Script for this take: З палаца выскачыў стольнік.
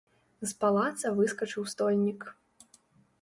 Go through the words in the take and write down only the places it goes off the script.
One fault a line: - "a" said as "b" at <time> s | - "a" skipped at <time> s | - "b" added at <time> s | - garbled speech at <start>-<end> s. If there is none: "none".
none